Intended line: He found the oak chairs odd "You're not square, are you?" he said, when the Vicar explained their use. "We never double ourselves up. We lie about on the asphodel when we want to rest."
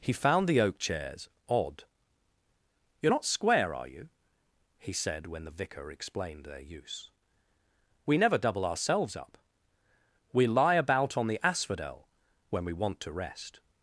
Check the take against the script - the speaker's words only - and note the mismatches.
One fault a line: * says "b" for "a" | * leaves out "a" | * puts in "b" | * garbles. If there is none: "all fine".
all fine